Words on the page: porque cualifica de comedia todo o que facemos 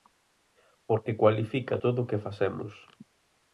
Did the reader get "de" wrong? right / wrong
wrong